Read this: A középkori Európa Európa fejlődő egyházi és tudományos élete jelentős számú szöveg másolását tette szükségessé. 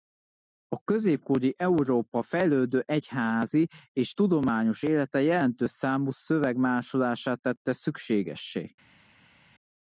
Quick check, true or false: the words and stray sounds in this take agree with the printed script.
false